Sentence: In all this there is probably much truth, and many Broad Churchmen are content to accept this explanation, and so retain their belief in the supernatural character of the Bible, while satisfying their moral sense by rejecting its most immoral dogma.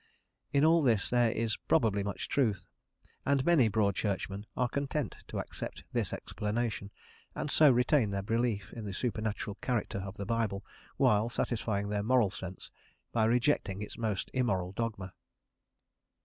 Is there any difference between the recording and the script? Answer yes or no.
no